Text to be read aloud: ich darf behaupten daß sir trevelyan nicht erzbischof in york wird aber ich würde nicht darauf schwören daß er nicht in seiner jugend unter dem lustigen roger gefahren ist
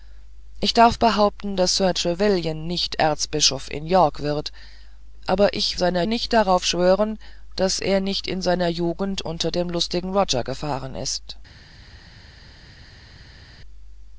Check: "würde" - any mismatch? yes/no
yes